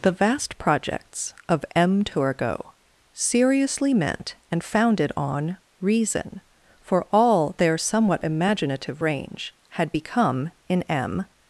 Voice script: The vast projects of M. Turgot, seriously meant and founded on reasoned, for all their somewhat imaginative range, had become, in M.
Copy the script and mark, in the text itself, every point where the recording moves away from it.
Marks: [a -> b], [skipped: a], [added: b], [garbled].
The vast projects of M. Turgot, seriously meant and founded on [reasoned, -> reason] for all their somewhat imaginative range, had become, in M.